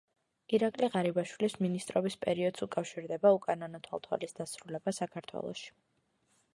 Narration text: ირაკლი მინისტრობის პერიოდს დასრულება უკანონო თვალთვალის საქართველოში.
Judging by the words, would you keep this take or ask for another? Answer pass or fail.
fail